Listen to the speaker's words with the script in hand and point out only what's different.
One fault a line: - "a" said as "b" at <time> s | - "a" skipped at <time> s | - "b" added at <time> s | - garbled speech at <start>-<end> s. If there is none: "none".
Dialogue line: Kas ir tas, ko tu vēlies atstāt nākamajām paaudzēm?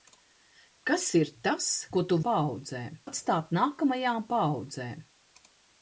- "vēlies" said as "paaudzēm" at 2.3 s